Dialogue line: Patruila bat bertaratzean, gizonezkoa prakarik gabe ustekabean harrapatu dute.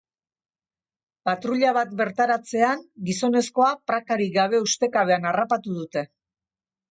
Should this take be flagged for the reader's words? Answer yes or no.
no